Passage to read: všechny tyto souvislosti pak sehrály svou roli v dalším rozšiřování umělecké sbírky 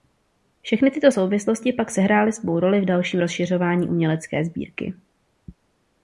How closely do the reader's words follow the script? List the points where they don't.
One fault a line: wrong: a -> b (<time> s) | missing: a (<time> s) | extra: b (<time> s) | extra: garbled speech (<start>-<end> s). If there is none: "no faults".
no faults